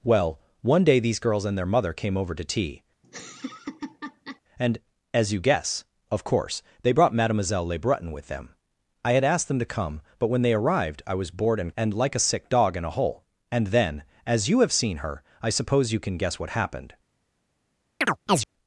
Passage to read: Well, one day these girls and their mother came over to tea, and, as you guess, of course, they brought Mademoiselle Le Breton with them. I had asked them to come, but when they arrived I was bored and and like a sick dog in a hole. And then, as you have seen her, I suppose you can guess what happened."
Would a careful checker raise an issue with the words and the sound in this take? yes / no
yes